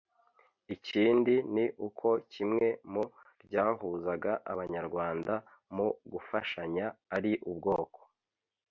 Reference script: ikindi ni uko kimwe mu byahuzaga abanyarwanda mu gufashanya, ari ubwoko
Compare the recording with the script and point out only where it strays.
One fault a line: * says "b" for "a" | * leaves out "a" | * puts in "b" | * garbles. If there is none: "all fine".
all fine